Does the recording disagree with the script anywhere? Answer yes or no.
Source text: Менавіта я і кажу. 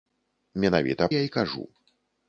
no